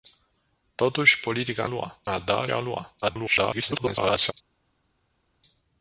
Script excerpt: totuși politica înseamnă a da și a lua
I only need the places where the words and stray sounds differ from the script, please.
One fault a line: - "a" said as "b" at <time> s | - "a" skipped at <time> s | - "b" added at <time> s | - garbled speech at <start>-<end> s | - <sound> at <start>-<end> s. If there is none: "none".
- "înseamnă" said as "lua" at 1.6 s
- "și" skipped at 2.5 s
- garbled speech at 3.0-4.3 s